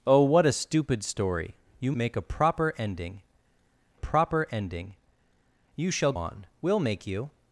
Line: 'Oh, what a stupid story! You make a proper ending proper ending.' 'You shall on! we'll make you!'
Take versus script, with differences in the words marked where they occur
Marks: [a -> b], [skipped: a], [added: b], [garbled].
'Oh, what a stupid story! You make a proper ending proper ending.' 'You shall on! we'll make you!'